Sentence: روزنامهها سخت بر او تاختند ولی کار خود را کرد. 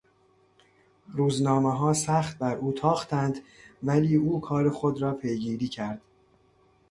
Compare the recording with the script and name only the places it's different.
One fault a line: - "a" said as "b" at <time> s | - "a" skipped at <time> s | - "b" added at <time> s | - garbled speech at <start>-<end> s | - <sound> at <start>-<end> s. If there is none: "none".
- "او" added at 4.2 s
- "پیگیری" added at 5.1 s